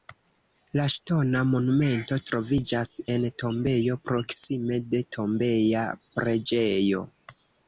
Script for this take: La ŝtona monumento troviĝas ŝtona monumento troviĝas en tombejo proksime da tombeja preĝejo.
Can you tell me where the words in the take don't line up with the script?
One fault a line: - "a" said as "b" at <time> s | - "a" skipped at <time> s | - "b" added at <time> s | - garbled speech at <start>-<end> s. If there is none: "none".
- "ŝtona monumento troviĝas" skipped at 2.9 s
- "da" said as "de" at 4.9 s